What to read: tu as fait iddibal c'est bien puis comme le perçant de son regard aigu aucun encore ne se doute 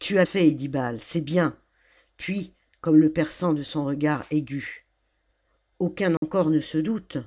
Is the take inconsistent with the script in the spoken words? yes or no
no